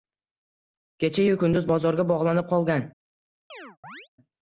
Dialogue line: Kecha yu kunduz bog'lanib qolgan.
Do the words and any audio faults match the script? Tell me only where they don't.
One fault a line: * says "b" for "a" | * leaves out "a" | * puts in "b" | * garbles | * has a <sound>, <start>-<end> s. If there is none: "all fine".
* puts in "bozorga"
* has a chirp, 3.5-4.1 s